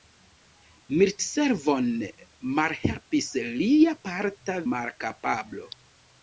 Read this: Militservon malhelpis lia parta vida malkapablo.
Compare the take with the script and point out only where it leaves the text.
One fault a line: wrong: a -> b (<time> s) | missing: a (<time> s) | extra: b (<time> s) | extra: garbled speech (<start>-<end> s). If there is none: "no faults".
missing: vida (4.5 s)